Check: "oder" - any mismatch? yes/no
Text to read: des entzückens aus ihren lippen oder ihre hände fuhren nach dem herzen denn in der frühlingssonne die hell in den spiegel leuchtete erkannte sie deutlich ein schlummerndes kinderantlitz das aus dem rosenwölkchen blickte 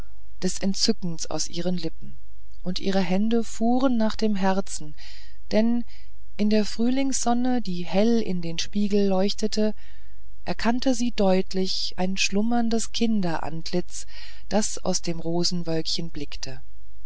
yes